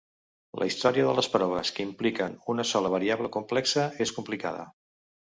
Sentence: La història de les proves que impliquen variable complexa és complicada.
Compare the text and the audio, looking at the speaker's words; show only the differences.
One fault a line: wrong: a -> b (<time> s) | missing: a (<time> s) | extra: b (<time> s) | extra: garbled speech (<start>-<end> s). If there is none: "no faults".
extra: una sola (2.5 s)